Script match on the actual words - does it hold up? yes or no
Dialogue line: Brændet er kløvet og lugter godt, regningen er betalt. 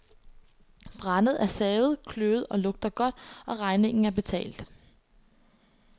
no